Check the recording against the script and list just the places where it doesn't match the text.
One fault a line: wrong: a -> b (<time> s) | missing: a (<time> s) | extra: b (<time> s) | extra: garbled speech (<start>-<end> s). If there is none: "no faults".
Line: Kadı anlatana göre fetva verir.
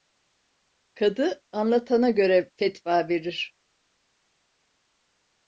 no faults